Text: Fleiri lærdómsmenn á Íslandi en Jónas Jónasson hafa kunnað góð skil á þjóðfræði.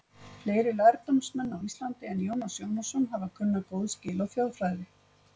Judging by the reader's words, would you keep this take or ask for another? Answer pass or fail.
pass